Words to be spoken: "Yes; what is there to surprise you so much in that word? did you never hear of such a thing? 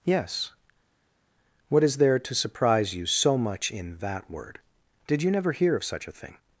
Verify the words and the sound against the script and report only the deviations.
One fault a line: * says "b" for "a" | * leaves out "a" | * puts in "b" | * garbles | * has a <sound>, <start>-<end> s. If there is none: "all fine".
all fine